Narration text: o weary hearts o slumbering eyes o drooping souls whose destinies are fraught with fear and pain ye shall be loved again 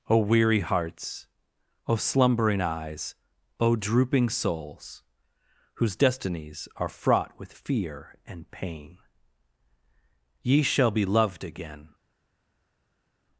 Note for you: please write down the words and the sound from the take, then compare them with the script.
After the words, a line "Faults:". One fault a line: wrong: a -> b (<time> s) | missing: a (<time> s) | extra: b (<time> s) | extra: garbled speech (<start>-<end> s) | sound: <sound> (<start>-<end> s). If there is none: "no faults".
o weary hearts o slumbering eyes o drooping souls whose destinies are fraught with fear and pain ye shall be loved again
Faults:
no faults